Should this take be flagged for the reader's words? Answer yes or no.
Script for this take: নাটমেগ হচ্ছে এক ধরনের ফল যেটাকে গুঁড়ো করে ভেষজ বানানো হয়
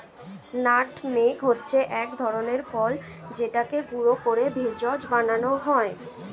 no